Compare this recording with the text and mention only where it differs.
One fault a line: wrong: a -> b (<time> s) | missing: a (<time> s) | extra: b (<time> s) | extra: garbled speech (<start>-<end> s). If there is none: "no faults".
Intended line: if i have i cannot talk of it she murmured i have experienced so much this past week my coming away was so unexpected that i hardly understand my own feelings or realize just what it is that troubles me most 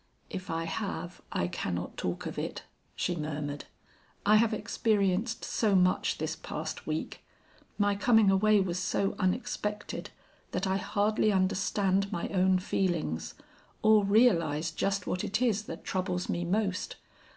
no faults